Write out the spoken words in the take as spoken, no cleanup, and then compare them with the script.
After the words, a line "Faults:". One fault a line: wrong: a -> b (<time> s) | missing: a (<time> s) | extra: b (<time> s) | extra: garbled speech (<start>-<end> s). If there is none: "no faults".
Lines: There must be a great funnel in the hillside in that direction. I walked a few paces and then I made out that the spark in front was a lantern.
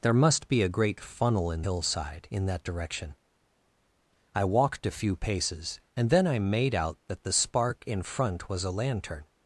There must be a great funnel in hillside in that direction. I walked a few paces and then I made out that the spark in front was a lantern.
Faults:
missing: the (1.6 s)